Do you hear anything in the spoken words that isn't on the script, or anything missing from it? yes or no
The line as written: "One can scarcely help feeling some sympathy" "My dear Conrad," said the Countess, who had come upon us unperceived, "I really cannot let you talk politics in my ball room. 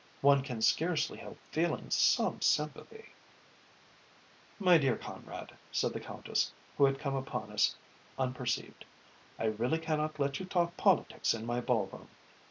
no